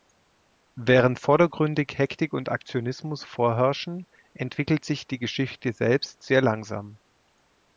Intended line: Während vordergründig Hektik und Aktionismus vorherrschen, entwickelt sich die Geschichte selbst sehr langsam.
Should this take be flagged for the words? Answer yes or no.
no